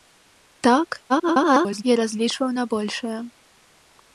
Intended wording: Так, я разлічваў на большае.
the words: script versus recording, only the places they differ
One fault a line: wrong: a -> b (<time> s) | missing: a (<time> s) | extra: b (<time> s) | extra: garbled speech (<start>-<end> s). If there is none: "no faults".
extra: garbled speech (1.1-1.8 s)